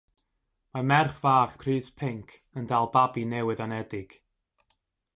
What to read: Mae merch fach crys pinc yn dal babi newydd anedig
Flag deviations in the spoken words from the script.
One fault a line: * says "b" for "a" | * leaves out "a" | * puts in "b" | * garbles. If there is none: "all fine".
all fine